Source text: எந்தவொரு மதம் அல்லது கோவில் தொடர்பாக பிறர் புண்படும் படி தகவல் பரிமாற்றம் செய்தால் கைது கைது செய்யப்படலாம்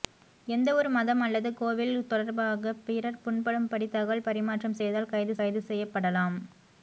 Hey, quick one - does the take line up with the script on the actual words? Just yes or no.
yes